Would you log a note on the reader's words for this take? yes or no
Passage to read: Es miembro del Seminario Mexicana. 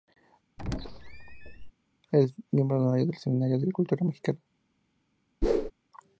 yes